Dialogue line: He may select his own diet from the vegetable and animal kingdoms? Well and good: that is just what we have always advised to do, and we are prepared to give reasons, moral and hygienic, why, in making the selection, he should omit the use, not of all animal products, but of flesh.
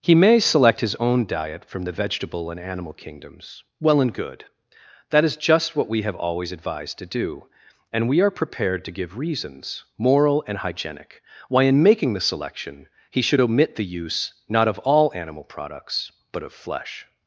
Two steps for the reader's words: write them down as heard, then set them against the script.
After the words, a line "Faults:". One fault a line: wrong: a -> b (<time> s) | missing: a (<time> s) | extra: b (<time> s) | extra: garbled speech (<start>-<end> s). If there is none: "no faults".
He may select his own diet from the vegetable and animal kingdoms? Well and good: that is just what we have always advised to do, and we are prepared to give reasons, moral and hygienic, why, in making the selection, he should omit the use, not of all animal products, but of flesh.
Faults:
no faults